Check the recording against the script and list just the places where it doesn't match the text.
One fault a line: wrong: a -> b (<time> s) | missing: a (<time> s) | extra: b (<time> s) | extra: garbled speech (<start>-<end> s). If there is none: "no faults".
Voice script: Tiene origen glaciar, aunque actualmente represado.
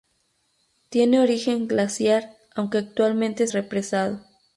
no faults